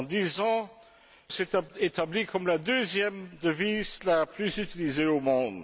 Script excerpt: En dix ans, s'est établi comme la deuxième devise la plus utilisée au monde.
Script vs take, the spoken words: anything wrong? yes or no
no